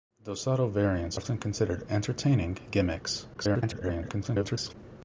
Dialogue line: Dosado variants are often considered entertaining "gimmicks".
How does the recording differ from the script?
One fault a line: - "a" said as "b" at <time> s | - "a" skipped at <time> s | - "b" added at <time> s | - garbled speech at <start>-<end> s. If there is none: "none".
- "are" skipped at 1.2 s
- garbled speech at 3.3-4.7 s